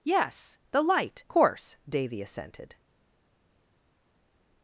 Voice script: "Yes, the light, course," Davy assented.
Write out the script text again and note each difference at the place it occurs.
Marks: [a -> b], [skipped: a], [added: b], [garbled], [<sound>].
"Yes, the light, course," Davy assented.